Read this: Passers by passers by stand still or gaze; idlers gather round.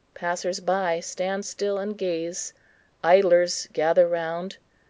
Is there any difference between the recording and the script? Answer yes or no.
yes